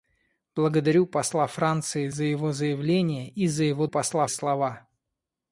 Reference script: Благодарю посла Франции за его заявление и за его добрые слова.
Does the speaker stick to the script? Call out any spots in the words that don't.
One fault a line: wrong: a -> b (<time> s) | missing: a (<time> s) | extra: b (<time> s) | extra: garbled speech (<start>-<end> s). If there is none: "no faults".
wrong: добрые -> посла (3.9 s)